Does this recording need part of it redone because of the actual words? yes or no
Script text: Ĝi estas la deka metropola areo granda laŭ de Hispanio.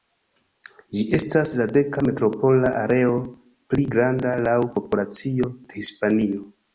yes